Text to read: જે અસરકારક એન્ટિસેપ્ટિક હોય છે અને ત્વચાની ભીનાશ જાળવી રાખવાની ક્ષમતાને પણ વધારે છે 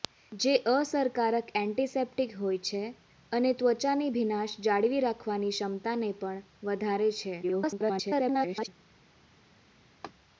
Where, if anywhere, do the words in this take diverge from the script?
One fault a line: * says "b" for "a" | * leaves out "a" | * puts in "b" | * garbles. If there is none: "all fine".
* garbles